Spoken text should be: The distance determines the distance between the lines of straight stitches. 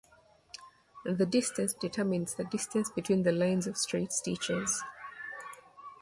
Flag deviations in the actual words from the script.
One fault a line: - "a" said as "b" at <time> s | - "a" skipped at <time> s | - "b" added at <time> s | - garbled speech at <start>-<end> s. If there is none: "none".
none